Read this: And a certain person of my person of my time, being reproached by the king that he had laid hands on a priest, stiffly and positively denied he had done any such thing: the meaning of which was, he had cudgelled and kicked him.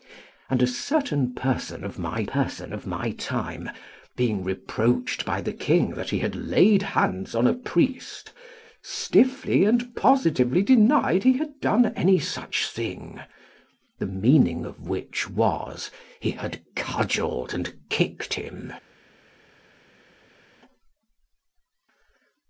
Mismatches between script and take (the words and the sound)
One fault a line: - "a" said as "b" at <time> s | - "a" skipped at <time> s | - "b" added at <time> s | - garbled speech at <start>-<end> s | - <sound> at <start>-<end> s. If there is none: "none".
none